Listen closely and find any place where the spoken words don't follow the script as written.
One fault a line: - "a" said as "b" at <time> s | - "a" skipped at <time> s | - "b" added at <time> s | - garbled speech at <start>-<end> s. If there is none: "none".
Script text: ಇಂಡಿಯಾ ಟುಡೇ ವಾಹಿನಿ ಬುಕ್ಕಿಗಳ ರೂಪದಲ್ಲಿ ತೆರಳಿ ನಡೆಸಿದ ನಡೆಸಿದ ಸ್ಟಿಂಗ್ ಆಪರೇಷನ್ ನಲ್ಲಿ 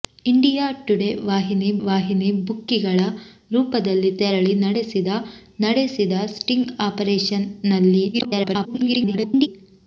- "ವಾಹಿನಿ" added at 1.8 s
- garbled speech at 8.1-9.5 s